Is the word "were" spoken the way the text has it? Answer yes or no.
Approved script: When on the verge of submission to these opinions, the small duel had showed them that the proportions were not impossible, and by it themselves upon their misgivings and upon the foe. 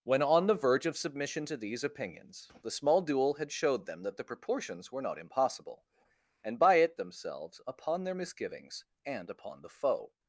yes